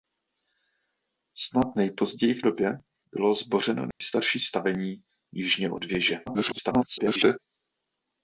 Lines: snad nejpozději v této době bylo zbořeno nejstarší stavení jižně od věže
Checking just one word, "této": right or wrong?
wrong